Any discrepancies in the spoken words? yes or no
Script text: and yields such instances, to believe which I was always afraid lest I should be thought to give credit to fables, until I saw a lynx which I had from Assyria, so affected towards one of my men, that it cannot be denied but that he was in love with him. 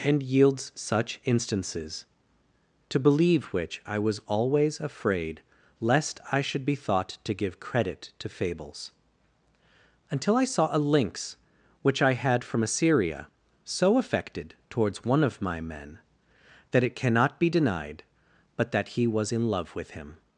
no